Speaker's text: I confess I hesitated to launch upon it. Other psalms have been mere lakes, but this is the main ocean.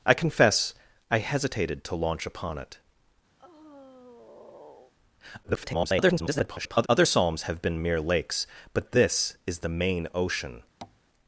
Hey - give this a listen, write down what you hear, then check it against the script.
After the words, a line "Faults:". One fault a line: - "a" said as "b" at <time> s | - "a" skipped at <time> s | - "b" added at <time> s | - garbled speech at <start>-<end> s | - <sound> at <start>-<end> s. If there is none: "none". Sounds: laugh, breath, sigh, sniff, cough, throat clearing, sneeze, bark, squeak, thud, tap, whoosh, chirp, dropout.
I confess I hesitated to launch upon it. [garbled] Other psalms have been mere lakes, but this is the main ocean.
Faults:
- sigh at 3.4-4.9 s
- garbled speech at 5.4-6.9 s
- tap at 10.8-11.0 s